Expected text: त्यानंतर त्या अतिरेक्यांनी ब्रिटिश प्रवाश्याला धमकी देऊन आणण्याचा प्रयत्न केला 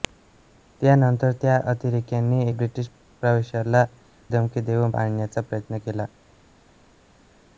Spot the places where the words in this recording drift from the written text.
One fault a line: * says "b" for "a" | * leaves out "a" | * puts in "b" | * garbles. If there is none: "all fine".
all fine